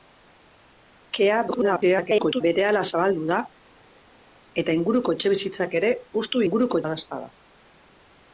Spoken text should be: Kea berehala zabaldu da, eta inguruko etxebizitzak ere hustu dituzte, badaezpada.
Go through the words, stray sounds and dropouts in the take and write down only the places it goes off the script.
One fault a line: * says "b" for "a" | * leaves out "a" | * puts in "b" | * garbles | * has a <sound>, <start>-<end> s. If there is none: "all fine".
* garbles
* says "inguruko" for "dituzte"